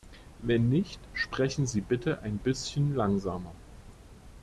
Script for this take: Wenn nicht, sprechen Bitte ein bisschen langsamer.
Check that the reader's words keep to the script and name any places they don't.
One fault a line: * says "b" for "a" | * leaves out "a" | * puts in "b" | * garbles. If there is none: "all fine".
* puts in "Sie"